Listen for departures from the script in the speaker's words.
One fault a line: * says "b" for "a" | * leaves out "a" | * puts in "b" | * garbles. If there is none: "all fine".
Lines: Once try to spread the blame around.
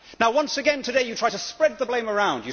* puts in "again today you"